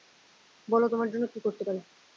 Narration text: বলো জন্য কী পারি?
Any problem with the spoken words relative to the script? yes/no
yes